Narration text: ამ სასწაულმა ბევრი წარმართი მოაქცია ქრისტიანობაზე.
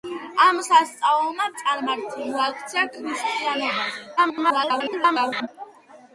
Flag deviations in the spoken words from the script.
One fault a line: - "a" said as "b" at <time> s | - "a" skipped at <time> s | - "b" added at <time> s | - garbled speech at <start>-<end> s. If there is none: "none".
- "ბევრი" skipped at 1.4 s
- garbled speech at 4.2-5.5 s